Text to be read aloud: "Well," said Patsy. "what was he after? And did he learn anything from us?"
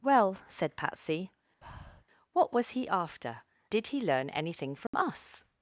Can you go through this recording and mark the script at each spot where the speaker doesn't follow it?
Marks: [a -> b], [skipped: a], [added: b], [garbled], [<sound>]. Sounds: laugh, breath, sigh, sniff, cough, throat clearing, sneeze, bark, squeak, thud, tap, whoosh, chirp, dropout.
"Well," said Patsy. [breath] "what was he after? [skipped: And] did he learn anything from [dropout] us?"